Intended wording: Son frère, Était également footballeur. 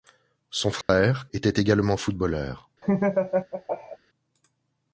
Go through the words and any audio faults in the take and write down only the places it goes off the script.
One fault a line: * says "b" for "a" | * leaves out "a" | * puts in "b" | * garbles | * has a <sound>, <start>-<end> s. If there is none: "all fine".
* has a dropout, 0.8-0.9 s
* has a laugh, 2.8-4.0 s